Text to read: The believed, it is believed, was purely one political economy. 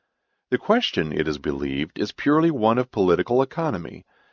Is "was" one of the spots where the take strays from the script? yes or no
yes